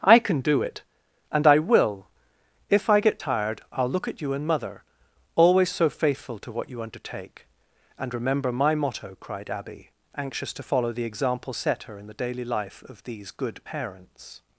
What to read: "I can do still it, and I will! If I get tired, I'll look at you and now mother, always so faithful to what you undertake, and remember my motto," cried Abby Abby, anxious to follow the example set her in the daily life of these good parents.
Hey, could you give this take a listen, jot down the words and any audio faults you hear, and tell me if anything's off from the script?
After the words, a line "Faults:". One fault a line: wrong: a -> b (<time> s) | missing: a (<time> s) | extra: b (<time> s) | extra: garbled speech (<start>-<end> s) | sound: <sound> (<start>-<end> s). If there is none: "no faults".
"I can do it, and I will! If I get tired, I'll look at you and mother, always so faithful to what you undertake, and remember my motto," cried Abby, anxious to follow the example set her in the daily life of these good parents.
Faults:
missing: still (0.6 s)
missing: now (4.5 s)
missing: Abby (9.9 s)